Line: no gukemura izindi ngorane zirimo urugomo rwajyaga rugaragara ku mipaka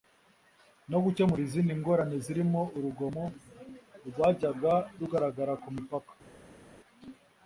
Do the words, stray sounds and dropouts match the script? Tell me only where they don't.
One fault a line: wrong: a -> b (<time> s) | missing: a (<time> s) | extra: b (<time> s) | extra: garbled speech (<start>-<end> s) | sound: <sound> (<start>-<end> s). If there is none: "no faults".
no faults